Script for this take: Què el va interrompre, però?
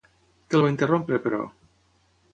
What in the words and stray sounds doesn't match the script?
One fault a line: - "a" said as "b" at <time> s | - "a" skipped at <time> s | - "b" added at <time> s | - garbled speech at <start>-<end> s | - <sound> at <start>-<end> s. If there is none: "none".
none